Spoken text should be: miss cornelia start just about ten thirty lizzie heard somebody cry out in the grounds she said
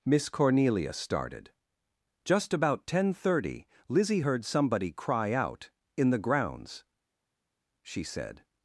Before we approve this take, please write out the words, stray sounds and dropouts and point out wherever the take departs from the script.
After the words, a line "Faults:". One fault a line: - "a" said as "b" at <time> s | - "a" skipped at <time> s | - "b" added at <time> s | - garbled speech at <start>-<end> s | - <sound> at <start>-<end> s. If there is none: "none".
miss cornelia started just about ten thirty lizzie heard somebody cry out in the grounds she said
Faults:
- "start" said as "started" at 0.9 s